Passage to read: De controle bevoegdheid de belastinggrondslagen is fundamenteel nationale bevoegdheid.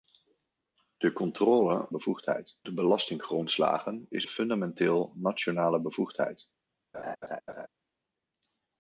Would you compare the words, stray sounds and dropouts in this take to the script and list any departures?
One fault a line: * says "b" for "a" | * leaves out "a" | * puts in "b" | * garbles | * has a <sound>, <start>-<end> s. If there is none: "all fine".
* has a laugh, 6.9-7.7 s